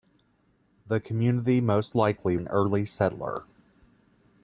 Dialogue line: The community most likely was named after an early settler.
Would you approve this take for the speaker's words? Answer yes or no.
no